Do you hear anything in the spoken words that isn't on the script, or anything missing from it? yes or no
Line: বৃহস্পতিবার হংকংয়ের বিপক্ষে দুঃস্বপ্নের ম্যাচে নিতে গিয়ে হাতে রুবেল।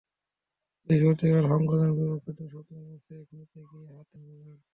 no